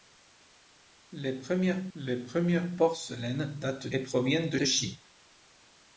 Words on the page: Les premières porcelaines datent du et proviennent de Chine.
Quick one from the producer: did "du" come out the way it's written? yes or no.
no